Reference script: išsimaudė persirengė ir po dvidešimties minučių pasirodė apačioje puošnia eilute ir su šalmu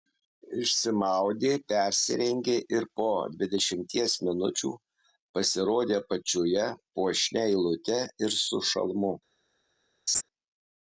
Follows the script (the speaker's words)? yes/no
yes